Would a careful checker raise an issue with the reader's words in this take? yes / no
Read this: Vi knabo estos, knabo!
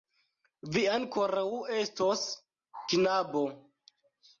yes